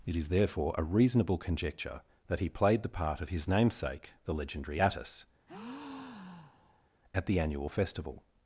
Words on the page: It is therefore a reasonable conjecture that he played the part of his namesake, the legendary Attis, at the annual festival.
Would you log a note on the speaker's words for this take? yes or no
no